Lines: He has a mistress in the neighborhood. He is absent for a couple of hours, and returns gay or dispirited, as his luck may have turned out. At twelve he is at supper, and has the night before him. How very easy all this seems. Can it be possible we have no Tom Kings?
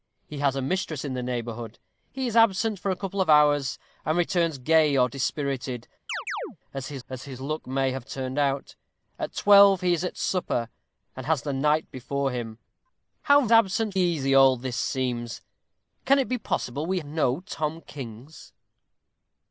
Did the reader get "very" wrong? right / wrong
wrong